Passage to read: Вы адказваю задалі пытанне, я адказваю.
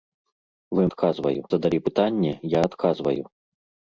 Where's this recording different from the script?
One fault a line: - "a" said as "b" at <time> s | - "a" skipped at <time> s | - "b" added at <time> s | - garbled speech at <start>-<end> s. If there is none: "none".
none